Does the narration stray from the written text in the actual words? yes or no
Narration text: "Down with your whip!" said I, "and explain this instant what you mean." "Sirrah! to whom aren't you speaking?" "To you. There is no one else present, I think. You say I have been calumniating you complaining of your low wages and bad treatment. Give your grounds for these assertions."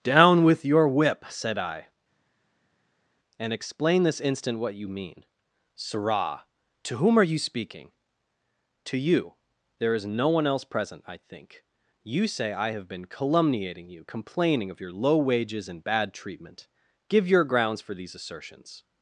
yes